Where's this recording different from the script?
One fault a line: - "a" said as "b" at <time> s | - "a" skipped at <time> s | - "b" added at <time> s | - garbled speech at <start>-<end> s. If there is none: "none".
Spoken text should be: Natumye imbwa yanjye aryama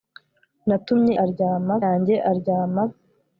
- "imbwa" said as "aryama" at 1.2 s